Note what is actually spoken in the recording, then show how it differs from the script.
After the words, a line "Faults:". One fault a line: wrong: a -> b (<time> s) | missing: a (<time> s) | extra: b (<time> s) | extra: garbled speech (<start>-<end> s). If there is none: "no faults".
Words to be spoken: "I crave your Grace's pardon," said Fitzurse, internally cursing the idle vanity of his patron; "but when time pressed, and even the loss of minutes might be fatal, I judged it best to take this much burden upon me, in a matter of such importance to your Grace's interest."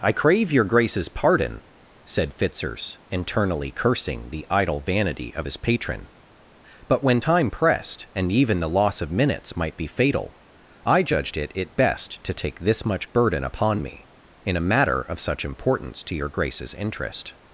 "I crave your Grace's pardon," said Fitzurse, internally cursing the idle vanity of his patron; "but when time pressed, and even the loss of minutes might be fatal, I judged it it best to take this much burden upon me, in a matter of such importance to your Grace's interest."
Faults:
extra: it (11.5 s)